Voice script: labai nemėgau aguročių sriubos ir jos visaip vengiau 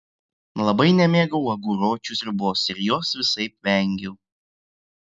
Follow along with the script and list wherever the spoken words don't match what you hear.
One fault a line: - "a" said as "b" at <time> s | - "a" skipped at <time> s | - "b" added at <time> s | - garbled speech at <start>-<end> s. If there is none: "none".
none